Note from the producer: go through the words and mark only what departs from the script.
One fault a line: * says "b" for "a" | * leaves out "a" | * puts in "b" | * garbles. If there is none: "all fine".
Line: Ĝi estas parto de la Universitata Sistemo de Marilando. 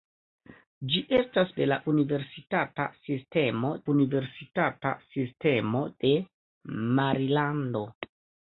* leaves out "parto"
* puts in "Universitata Sistemo"